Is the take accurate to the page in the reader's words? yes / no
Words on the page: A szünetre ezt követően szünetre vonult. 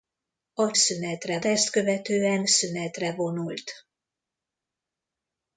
yes